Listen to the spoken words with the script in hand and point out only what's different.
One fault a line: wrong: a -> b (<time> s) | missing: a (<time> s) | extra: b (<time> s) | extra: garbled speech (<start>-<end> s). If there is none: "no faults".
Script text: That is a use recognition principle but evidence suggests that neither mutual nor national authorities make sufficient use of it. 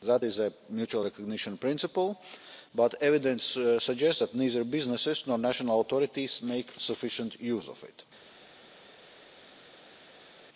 wrong: use -> mutual (0.7 s)
wrong: mutual -> businesses (4.6 s)